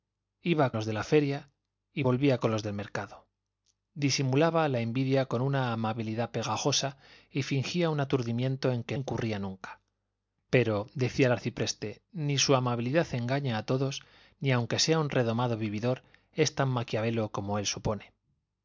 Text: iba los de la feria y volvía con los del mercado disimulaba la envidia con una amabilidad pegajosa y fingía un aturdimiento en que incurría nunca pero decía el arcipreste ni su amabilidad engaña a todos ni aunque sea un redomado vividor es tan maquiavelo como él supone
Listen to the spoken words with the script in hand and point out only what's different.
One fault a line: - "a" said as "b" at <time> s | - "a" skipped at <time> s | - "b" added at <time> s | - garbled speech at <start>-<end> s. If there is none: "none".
none